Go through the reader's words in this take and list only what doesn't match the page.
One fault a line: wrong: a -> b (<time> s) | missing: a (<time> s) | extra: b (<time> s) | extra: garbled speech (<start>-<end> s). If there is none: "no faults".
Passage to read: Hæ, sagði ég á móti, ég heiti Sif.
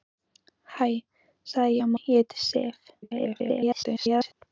missing: móti (1.9 s)
extra: garbled speech (3.0-4.3 s)